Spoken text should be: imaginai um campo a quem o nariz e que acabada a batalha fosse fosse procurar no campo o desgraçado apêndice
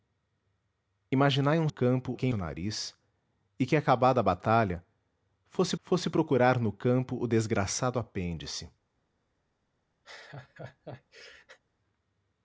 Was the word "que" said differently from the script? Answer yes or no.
no